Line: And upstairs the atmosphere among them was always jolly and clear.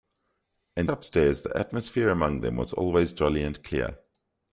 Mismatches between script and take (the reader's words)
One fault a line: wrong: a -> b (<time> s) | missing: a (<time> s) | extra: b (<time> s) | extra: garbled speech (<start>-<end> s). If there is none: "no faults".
no faults